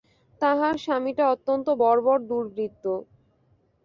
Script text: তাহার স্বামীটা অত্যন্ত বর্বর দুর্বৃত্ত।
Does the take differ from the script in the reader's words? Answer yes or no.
no